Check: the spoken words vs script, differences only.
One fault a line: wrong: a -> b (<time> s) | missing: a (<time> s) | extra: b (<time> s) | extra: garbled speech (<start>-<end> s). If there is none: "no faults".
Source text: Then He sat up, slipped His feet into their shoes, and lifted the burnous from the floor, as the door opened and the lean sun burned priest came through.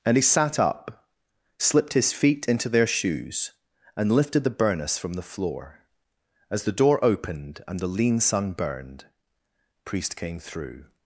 wrong: Then -> And (0.1 s)